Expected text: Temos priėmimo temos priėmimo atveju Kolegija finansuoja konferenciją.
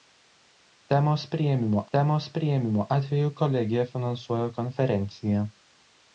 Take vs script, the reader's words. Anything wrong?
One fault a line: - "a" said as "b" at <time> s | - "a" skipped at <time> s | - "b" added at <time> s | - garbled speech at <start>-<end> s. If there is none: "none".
none